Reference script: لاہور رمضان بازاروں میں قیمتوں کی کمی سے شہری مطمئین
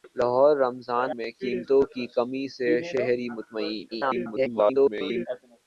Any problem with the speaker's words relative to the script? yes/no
yes